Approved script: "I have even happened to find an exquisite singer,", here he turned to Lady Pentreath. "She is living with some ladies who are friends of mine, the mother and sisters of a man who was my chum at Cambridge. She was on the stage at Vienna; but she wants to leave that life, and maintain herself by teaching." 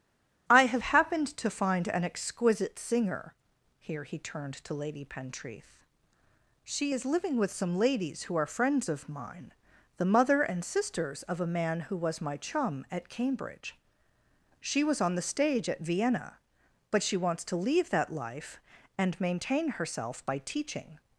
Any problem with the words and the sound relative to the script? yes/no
yes